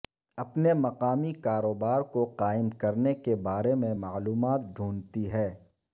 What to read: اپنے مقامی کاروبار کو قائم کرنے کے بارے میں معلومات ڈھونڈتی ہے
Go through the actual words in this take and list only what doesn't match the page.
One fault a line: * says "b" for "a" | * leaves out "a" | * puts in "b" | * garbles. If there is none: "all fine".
all fine